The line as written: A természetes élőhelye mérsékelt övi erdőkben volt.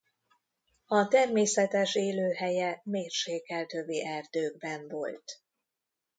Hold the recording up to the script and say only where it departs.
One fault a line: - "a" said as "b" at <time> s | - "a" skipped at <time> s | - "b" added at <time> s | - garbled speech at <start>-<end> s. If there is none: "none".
none